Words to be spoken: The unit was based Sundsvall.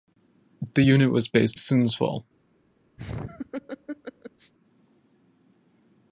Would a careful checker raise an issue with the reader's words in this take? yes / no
no